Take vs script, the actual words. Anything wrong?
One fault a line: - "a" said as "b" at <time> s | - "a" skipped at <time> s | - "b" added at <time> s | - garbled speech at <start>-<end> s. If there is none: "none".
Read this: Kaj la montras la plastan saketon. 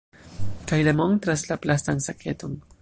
none